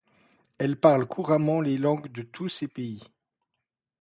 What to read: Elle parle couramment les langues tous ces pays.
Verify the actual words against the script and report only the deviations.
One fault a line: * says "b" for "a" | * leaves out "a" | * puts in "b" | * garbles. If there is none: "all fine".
* puts in "de"